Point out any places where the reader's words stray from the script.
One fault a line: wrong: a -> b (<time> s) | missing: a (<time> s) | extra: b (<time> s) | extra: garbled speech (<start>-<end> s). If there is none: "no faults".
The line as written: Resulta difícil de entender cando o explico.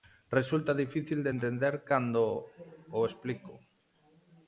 no faults